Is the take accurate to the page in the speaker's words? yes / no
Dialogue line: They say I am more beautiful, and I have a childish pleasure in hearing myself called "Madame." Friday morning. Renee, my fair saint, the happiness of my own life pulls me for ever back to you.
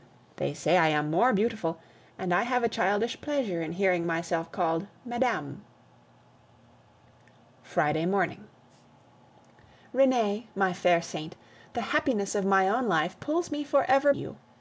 no